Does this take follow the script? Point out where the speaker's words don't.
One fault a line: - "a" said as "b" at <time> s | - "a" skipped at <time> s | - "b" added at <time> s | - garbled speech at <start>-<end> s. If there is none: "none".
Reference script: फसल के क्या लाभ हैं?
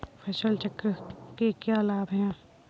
- "चक्र" added at 0.5 s